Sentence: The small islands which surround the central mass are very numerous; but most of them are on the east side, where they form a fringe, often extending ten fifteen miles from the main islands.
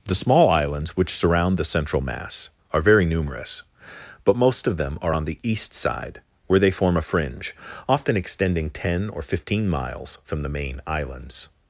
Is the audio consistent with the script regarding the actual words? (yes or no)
no